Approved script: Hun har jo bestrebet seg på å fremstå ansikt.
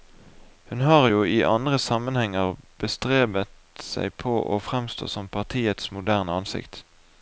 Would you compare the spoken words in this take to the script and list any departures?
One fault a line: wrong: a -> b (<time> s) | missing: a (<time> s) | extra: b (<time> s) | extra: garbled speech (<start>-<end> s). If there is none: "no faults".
extra: i andre sammenhenger (1.2 s)
extra: som partiets moderne (5.2 s)